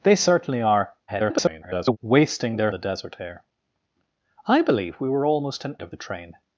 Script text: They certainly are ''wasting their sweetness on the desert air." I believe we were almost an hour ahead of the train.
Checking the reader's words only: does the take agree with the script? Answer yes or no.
no